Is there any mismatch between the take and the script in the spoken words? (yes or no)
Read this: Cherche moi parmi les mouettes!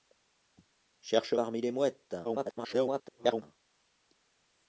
yes